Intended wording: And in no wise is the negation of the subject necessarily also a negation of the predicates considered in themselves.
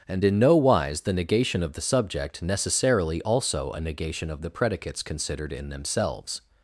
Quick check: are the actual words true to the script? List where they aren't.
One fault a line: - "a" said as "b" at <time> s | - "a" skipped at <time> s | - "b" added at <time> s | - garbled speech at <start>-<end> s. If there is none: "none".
- "is" skipped at 1.0 s